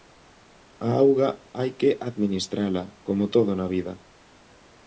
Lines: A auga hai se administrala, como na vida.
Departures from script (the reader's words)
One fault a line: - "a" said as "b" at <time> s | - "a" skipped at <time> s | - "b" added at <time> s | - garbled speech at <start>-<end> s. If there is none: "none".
- "se" said as "que" at 1.8 s
- "todo" added at 3.3 s